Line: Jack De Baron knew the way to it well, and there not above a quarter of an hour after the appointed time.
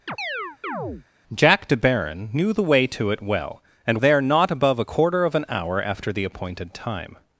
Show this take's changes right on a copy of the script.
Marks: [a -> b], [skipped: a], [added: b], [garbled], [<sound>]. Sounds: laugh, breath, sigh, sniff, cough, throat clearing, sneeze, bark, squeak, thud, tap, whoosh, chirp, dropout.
[chirp] Jack De Baron knew the way to it well, and there not above a quarter of an hour after the appointed time.